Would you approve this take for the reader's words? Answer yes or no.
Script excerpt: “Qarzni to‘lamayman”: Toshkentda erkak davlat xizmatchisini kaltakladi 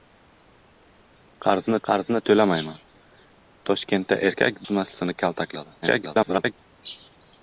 no